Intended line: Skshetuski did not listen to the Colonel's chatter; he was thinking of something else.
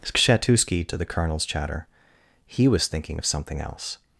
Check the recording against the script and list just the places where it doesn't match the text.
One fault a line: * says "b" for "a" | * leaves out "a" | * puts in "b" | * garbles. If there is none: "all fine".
* leaves out "did not listen"